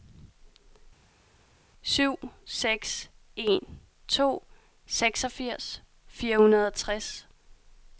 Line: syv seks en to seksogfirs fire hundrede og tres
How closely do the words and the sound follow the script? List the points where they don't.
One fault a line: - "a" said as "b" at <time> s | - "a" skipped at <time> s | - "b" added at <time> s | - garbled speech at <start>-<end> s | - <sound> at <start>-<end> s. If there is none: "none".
none